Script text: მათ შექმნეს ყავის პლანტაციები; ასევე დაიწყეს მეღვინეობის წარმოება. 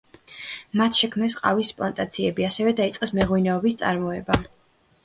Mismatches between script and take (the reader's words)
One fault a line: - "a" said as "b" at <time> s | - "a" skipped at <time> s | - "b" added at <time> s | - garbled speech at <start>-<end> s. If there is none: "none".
none